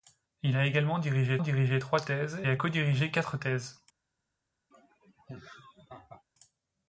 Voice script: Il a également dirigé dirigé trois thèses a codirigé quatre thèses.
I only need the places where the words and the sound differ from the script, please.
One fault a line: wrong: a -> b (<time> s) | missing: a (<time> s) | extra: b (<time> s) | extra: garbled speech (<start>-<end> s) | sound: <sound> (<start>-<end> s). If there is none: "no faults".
sound: laugh (4.7-6.2 s)